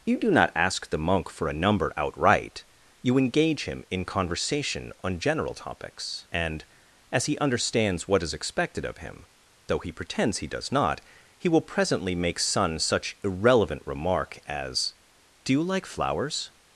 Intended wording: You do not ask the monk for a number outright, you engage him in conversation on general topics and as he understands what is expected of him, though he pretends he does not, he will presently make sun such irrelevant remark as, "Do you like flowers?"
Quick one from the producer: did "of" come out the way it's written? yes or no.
yes